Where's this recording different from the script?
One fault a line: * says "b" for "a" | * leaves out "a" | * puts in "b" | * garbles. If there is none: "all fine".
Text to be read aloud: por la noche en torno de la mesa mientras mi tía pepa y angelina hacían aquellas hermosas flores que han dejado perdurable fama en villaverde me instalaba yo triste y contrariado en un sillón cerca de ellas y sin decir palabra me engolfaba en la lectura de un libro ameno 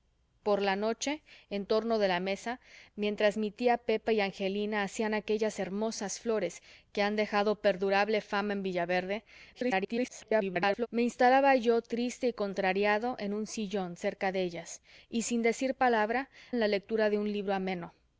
* garbles
* leaves out "me engolfaba"